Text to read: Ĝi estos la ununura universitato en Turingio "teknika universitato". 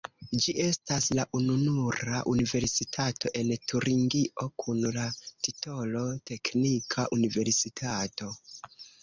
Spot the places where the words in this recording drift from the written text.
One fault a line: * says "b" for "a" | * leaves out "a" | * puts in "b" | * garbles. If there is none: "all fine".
* says "estas" for "estos"
* puts in "kun la titolo"